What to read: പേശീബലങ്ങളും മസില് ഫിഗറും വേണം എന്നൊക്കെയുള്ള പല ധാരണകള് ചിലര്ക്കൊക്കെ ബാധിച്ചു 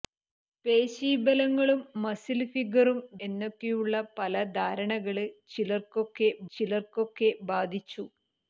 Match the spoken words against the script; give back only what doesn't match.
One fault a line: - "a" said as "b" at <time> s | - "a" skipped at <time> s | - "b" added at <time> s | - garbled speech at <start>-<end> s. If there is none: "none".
- "വേണം" skipped at 3.0 s
- "ചിലര്ക്കൊക്കെ" added at 6.5 s